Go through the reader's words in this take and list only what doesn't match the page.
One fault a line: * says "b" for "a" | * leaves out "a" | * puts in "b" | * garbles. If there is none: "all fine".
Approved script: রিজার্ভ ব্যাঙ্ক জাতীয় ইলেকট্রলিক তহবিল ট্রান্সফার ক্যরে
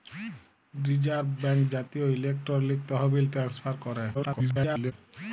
* garbles